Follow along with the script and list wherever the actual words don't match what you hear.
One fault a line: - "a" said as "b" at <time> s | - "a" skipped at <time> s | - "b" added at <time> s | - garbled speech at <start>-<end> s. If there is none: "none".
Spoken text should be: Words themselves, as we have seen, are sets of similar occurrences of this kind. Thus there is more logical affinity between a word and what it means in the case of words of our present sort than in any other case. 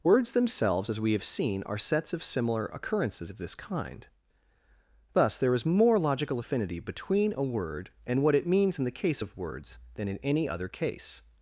- "of our present sort" skipped at 9.8 s